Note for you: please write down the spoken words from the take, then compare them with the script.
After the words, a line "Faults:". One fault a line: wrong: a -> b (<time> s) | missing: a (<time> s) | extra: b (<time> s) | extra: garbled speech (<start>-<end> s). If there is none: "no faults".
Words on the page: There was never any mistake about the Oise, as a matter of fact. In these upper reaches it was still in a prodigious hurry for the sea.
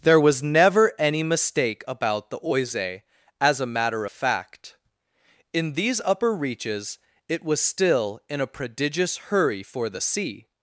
There was never any mistake about the Oise, as a matter fact. In these upper reaches it was still in a prodigious hurry for the sea.
Faults:
missing: of (4.0 s)